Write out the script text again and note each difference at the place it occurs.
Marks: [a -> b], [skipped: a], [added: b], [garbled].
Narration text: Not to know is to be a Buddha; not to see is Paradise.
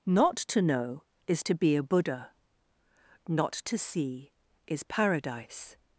Not to know is to be a Buddha; not to see is Paradise.